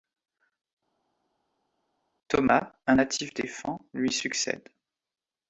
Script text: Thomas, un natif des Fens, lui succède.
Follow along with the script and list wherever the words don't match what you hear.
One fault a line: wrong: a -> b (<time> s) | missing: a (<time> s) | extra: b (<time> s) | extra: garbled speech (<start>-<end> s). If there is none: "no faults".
no faults